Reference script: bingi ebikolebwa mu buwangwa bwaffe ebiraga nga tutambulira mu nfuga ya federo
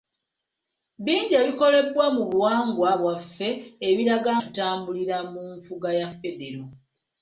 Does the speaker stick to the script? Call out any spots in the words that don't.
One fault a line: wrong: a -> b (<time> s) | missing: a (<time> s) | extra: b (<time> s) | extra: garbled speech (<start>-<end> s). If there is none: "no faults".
missing: nga (4.3 s)